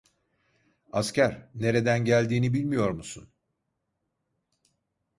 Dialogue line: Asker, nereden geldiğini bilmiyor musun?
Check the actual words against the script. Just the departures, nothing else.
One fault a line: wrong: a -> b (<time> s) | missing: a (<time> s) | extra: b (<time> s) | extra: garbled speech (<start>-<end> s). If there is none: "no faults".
no faults